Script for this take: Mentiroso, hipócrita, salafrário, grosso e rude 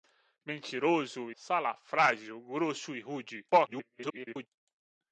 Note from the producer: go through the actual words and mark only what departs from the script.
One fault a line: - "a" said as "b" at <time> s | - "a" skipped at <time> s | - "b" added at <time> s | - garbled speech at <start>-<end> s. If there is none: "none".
- "hipócrita" skipped at 1.3 s
- garbled speech at 3.5-4.5 s